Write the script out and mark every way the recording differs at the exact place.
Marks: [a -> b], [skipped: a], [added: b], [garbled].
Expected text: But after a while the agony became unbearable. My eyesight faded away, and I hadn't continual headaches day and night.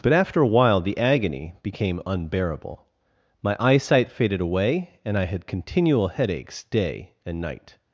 But after a while the agony became unbearable. My eyesight faded away, and I [hadn't -> had] continual headaches day and night.